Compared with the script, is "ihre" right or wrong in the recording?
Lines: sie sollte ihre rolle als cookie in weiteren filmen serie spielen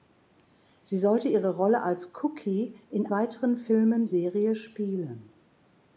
right